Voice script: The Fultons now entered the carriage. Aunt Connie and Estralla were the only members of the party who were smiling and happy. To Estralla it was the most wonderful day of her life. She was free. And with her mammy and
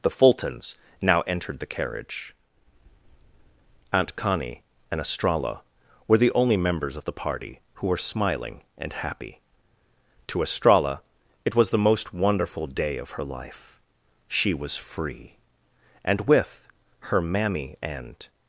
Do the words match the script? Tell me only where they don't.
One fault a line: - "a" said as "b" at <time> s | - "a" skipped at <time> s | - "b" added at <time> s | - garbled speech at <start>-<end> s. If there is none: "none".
none